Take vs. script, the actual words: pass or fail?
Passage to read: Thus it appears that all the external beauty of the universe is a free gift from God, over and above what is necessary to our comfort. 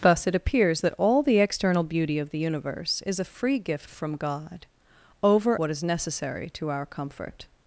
fail